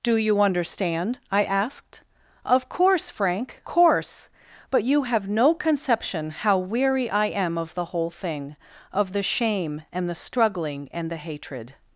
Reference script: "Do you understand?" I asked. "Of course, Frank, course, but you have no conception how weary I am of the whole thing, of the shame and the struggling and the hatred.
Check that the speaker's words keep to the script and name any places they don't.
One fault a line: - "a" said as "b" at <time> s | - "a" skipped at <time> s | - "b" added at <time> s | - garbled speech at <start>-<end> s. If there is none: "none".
none